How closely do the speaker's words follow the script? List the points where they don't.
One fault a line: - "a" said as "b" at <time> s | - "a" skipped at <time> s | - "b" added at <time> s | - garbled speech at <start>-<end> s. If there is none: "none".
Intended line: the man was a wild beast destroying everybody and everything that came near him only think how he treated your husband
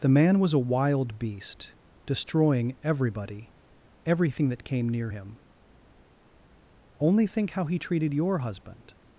- "and" skipped at 3.5 s